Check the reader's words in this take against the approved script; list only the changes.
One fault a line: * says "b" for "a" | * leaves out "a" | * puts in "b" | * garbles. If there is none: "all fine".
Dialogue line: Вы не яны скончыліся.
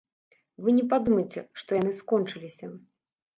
* puts in "падумайце што"